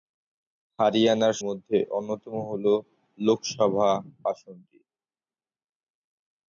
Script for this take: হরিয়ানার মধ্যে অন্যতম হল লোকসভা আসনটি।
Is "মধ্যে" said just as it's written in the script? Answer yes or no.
yes